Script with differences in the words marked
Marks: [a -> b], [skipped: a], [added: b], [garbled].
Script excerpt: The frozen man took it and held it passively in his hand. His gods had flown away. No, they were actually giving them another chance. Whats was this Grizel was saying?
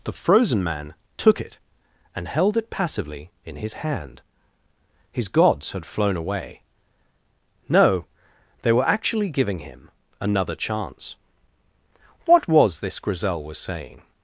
The frozen man took it and held it passively in his hand. His gods had flown away. No, they were actually giving [them -> him] another chance. [Whats -> What] was this Grizel was saying?